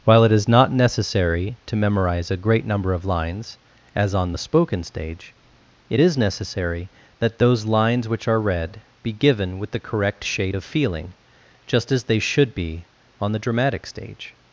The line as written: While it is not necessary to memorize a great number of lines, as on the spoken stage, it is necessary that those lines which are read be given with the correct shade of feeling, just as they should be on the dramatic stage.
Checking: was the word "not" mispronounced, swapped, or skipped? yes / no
no